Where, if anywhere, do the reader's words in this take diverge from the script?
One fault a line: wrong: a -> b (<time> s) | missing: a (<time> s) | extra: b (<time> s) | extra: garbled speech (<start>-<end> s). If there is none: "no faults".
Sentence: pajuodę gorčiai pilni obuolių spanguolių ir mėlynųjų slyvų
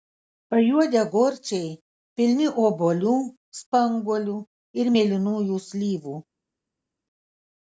no faults